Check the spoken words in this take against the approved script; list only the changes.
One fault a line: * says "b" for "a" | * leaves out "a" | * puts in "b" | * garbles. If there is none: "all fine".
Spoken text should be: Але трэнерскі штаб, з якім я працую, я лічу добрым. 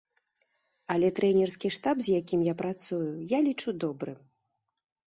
all fine